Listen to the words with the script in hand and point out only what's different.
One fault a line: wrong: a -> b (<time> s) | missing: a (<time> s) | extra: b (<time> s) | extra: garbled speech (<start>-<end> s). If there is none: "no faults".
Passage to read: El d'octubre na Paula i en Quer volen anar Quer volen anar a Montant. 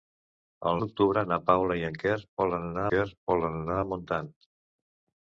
no faults